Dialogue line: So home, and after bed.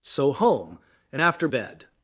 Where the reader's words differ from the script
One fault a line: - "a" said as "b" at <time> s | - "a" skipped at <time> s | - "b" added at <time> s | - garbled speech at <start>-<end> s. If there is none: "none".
none